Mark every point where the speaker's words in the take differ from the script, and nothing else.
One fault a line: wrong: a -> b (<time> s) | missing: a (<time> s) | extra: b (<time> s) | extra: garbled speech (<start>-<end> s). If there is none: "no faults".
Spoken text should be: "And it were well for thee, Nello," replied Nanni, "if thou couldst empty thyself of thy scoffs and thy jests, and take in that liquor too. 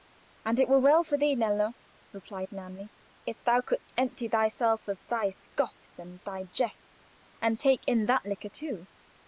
no faults